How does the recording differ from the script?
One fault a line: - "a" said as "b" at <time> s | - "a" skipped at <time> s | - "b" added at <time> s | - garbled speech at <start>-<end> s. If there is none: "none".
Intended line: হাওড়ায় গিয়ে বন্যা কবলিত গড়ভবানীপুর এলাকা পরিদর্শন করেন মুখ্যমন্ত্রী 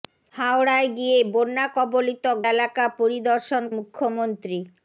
- "গড়ভবানীপুর" skipped at 2.2 s
- "করেন" skipped at 3.6 s